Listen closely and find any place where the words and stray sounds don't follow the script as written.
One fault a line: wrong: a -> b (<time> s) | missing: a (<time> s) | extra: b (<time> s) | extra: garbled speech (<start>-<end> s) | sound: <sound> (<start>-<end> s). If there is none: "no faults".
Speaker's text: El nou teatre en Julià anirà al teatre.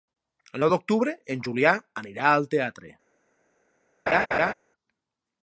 wrong: teatre -> d'octubre (0.7 s)
sound: laugh (4.1-4.5 s)